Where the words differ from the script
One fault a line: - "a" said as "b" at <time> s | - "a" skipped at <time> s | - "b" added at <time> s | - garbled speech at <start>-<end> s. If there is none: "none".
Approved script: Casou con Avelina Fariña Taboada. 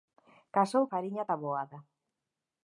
- "con Avelina" skipped at 0.8 s